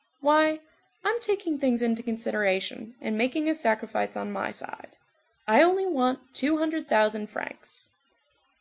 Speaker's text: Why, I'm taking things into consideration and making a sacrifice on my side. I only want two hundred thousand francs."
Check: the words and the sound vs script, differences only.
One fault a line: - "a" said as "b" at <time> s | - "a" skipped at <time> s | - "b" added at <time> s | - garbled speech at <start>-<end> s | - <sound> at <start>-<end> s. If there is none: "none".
none